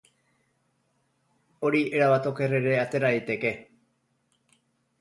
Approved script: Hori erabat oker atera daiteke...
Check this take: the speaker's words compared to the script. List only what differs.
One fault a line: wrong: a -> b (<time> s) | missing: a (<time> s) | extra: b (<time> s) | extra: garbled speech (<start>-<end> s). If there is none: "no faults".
extra: ere (2.6 s)